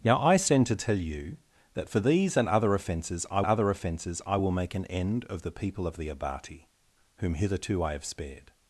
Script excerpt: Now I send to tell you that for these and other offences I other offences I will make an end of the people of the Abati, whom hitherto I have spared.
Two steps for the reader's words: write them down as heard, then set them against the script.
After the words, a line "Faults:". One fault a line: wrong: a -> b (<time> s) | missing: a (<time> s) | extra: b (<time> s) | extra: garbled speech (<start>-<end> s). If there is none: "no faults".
Now I send to tell you that for these and other offences I other offences I will make an end of the people of the Abati, whom hitherto I have spared.
Faults:
no faults